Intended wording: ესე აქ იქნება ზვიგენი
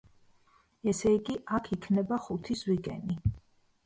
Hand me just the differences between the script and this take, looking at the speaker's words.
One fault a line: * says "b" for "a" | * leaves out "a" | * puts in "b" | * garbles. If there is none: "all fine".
* puts in "იგი"
* puts in "ხუთი"